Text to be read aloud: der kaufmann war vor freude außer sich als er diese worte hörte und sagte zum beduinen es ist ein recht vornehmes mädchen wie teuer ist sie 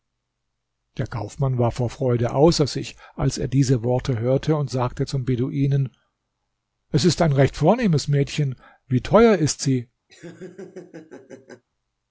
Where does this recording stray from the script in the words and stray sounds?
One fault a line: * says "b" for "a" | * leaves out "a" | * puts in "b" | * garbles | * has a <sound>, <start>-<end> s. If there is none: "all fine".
* has a laugh, 10.1-11.6 s